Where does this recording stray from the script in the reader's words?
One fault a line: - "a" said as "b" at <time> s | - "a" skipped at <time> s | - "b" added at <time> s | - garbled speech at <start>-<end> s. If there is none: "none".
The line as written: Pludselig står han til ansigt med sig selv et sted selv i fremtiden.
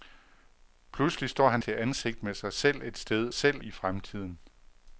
none